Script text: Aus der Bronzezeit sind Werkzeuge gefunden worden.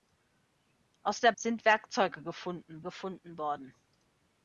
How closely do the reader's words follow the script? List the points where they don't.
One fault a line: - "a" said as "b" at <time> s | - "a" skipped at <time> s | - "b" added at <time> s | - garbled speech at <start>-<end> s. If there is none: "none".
- "Bronzezeit" skipped at 1.3 s
- "gefunden" added at 2.8 s